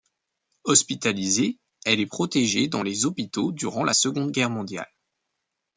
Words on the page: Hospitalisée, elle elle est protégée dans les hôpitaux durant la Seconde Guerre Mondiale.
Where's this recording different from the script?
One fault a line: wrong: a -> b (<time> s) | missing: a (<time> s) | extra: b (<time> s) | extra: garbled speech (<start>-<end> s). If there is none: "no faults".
missing: elle (2.0 s)